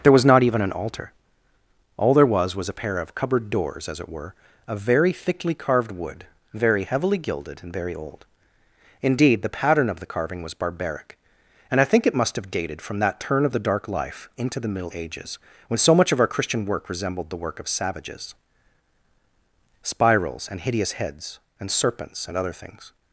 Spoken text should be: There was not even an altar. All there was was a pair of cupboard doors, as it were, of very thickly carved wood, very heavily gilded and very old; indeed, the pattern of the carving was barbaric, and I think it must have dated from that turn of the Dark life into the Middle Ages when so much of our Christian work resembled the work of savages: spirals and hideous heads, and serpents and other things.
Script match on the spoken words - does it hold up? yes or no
yes